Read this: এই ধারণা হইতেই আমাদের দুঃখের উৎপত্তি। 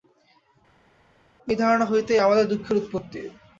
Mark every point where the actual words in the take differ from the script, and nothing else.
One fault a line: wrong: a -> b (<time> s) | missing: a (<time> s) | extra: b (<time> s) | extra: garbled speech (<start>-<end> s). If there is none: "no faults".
no faults